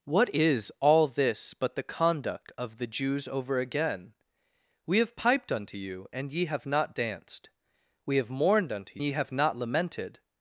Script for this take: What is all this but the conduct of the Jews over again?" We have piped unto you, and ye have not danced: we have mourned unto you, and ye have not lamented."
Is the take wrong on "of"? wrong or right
right